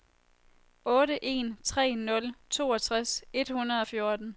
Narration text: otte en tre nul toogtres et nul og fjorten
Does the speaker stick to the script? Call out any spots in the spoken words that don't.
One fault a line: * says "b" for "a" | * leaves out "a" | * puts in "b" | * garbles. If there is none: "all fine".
* says "hundrede" for "nul"